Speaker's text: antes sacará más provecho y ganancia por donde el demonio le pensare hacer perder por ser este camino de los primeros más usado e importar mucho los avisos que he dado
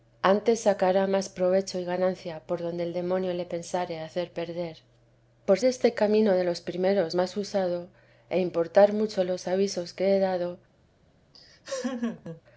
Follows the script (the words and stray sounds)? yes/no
no